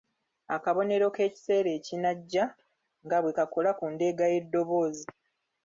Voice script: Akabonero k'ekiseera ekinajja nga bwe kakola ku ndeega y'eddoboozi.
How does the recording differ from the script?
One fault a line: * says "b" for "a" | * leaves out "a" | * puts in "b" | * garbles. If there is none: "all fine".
all fine